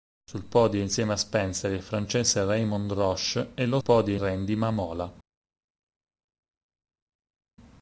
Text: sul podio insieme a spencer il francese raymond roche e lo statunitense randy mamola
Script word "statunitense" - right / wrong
wrong